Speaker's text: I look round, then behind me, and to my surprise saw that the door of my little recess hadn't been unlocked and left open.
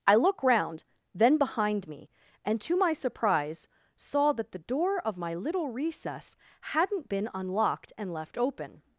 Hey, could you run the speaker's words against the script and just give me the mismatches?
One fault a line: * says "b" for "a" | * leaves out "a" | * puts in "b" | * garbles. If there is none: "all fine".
all fine